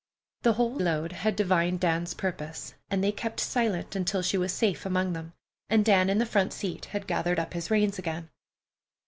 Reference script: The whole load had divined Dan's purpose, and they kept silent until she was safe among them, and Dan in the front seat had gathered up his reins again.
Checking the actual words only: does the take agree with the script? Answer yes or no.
yes